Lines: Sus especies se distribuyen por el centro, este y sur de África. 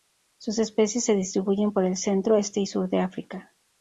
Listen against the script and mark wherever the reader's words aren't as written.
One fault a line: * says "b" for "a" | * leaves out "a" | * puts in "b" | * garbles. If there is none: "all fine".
all fine